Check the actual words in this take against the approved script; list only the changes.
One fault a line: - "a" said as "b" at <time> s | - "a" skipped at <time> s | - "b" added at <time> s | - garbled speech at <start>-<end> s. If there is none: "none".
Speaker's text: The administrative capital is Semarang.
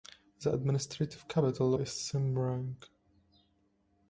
none